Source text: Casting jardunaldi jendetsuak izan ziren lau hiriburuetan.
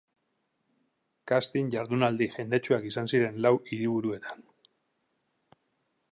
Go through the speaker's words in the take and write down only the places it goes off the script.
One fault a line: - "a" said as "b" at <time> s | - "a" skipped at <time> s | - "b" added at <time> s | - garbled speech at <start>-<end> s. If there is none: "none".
none